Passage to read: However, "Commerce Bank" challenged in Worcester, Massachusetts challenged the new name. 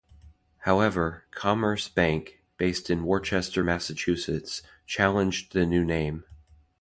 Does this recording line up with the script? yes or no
no